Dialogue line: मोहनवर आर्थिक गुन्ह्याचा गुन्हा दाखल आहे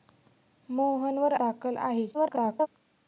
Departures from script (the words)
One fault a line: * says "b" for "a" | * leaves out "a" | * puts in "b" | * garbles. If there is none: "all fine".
* leaves out "आर्थिक गुन्ह्याचा गुन्हा"
* garbles